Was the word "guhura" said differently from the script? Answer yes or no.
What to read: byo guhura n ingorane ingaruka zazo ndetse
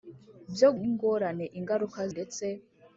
yes